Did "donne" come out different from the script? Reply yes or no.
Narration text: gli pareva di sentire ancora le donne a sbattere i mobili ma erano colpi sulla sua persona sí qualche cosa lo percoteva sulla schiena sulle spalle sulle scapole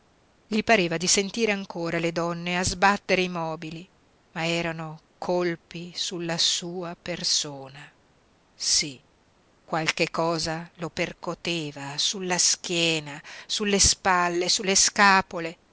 no